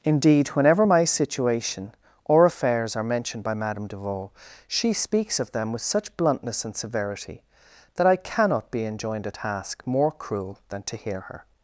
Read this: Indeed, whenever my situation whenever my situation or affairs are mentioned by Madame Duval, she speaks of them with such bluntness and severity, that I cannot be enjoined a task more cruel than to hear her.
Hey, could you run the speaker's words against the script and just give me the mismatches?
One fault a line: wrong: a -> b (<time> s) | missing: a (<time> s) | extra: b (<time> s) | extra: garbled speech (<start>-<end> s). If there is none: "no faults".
missing: whenever my situation (1.9 s)